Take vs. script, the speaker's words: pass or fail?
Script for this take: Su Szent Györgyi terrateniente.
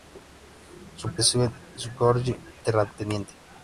pass